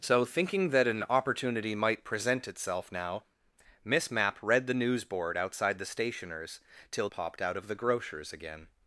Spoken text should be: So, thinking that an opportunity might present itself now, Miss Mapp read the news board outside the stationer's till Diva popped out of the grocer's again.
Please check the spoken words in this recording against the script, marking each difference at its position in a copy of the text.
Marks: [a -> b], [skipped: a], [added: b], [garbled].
So, thinking that an opportunity might present itself now, Miss Mapp read the news board outside the stationer's till [skipped: Diva] popped out of the grocer's again.